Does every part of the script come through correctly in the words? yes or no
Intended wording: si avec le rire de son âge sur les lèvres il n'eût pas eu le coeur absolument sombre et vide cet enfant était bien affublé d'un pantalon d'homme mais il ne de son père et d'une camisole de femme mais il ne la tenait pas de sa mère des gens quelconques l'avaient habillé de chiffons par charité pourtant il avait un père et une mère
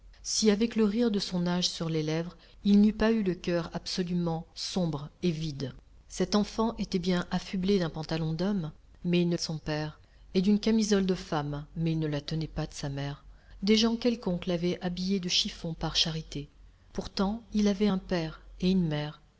yes